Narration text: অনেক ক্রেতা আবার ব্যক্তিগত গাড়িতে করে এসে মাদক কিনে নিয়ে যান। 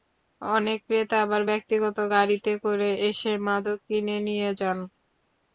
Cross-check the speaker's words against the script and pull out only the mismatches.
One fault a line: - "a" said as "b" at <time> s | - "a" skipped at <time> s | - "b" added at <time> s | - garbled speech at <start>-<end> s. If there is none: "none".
none